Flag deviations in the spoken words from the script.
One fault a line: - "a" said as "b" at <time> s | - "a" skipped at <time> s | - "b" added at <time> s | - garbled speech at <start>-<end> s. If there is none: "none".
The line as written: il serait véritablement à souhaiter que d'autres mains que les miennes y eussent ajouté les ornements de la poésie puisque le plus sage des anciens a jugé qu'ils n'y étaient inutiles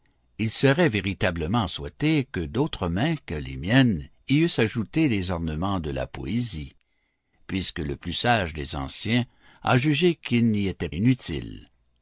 none